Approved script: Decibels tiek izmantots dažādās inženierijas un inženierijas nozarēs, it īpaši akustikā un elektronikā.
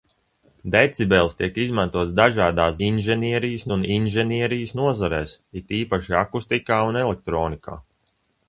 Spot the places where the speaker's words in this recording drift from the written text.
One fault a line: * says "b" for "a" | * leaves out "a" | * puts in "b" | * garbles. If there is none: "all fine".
all fine